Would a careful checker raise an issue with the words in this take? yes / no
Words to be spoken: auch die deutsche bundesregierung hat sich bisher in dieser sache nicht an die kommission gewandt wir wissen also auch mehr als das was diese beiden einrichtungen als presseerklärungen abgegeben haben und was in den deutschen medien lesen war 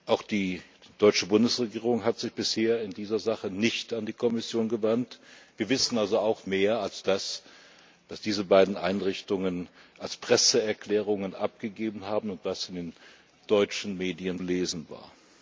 no